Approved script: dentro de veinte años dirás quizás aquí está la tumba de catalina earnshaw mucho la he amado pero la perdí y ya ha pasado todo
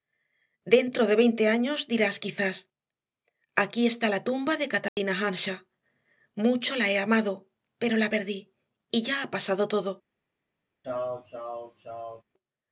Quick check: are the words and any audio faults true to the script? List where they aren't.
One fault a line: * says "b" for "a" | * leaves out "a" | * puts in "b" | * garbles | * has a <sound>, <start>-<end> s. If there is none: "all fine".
* has a dropout, 4.9-5.0 s
* has a sneeze, 10.8-12.2 s